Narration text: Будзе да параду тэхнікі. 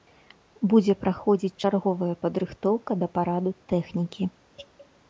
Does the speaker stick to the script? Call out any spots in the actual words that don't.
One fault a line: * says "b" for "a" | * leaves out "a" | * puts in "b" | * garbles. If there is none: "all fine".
* puts in "праходзіць чарговая падрыхтоўка"